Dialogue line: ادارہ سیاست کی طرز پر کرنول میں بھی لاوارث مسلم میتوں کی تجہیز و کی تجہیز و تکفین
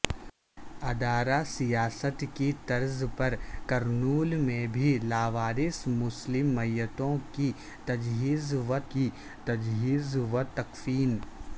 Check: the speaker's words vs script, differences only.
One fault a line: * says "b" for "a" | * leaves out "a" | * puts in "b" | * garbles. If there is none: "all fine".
all fine